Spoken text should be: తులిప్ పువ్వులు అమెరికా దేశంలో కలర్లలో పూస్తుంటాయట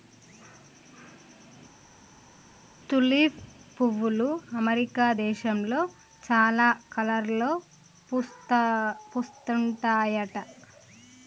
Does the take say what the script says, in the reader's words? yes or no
no